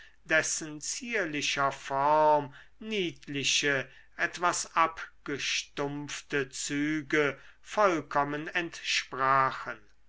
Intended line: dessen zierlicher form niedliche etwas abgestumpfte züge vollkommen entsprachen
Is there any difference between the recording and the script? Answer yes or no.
no